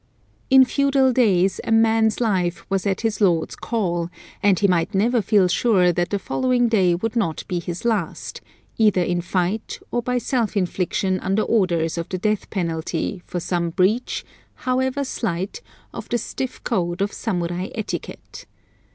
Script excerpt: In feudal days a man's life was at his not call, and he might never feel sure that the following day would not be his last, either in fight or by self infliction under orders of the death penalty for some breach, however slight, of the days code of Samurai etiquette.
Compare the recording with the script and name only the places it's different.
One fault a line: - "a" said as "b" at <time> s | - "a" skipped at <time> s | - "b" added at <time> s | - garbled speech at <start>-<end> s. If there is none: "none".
- "not" said as "lord's" at 3.2 s
- "days" said as "stiff" at 16.2 s